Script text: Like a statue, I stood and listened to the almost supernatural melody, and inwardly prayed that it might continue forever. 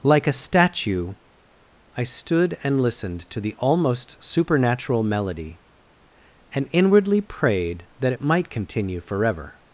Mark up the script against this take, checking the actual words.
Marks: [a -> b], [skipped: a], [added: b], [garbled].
Like a statue, I stood and listened to the almost supernatural melody, and inwardly prayed that it might continue forever.